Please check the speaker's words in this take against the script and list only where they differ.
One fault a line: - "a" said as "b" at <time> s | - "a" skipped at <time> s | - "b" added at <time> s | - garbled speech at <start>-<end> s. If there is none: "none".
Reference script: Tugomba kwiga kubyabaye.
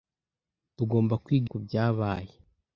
none